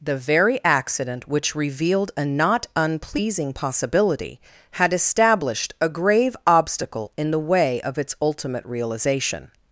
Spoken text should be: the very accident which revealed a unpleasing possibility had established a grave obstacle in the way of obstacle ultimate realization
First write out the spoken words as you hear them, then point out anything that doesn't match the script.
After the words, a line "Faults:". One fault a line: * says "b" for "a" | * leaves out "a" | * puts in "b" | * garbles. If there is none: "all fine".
the very accident which revealed a not unpleasing possibility had established a grave obstacle in the way of its ultimate realization
Faults:
* puts in "not"
* says "its" for "obstacle"